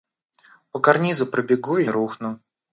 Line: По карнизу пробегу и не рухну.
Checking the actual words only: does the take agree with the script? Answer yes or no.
no